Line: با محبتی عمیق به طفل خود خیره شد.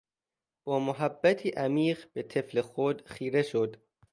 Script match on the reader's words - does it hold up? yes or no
yes